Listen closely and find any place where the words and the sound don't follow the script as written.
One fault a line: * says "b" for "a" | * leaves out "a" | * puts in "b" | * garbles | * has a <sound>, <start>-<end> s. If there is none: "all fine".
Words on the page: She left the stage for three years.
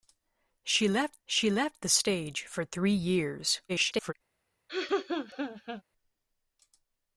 * puts in "she left"
* garbles
* has a laugh, 4.7-5.8 s